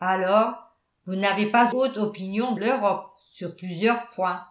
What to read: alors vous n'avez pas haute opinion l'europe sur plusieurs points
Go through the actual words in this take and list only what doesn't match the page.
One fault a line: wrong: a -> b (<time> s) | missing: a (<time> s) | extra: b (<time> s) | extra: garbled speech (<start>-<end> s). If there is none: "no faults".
no faults